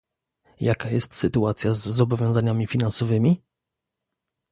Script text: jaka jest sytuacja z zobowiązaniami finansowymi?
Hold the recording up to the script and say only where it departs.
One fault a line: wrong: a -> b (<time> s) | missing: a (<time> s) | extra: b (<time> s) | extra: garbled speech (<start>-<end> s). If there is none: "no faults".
no faults